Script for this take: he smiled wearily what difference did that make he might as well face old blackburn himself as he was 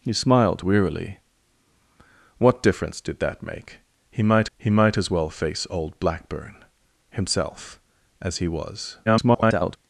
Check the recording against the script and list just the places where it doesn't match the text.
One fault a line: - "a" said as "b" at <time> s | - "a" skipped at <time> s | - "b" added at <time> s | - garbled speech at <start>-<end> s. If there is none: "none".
- "he might" added at 4.6 s
- garbled speech at 9.1-9.8 s